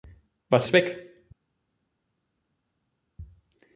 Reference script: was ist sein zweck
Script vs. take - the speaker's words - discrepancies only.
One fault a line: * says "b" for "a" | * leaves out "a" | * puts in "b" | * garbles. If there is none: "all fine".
* leaves out "ist sein"